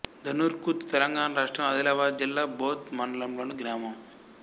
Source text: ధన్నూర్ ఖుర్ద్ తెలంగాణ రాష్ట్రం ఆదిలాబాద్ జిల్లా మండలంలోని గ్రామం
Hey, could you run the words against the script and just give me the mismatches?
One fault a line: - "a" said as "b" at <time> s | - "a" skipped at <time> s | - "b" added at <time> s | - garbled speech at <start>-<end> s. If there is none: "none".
- "బోథ్" added at 2.6 s